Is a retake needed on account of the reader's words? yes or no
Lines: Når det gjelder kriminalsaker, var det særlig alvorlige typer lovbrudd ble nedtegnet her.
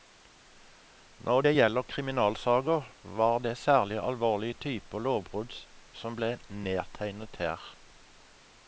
yes